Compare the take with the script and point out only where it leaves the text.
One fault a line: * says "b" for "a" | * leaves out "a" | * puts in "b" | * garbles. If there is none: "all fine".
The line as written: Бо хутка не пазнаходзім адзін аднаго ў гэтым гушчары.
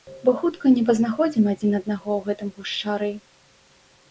all fine